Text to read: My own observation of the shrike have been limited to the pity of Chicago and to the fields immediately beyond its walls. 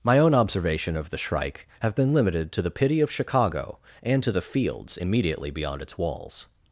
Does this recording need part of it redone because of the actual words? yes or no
no